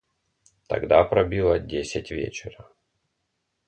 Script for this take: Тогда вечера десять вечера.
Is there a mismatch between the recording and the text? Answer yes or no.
yes